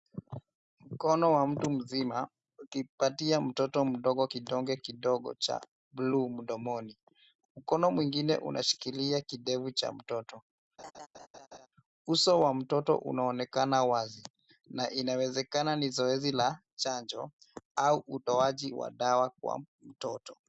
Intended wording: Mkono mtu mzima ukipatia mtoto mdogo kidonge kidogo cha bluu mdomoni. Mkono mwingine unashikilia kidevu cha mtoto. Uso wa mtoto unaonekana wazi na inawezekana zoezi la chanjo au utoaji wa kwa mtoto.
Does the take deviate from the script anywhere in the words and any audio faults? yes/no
yes